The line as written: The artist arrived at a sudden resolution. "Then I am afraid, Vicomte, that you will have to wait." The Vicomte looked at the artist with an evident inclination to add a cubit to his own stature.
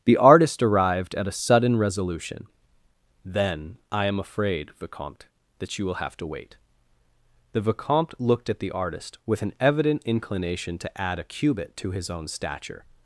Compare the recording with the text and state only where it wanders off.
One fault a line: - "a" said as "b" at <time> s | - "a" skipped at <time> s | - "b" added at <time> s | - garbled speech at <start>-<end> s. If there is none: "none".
none